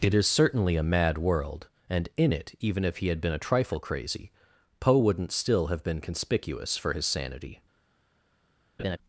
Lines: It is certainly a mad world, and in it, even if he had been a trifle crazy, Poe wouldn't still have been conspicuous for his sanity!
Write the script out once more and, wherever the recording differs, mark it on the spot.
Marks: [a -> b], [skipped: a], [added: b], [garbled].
It is certainly a mad world, and in it, even if he had been a trifle crazy, Poe wouldn't still have been conspicuous for his sanity!